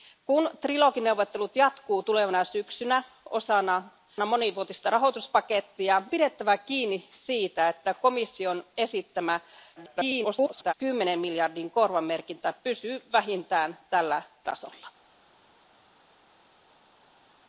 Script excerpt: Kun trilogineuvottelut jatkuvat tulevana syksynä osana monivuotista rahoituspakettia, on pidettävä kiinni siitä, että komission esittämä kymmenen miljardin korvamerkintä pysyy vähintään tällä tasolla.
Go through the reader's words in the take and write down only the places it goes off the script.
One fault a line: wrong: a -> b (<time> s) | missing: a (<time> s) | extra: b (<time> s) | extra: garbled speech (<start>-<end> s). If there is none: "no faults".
missing: on (6.0 s)
extra: garbled speech (9.8-10.7 s)